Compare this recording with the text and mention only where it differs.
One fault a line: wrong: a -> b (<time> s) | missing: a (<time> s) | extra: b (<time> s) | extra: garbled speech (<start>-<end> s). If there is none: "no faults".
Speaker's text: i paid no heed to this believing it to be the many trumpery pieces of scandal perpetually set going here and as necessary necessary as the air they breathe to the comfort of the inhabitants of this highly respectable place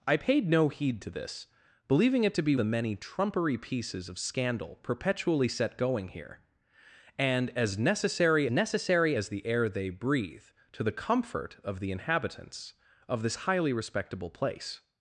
no faults